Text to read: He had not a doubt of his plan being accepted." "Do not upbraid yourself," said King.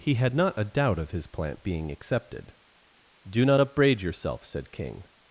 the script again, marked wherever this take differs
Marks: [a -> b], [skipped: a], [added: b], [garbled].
He had not a doubt of his [plan -> plant] being accepted." "Do not upbraid yourself," said King.